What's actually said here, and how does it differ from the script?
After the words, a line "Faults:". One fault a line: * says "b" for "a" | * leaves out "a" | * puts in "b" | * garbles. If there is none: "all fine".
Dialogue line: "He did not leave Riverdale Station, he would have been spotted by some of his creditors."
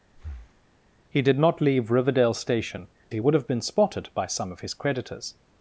"He did not leave Riverdale Station, he would have been spotted by some of his creditors."
Faults:
all fine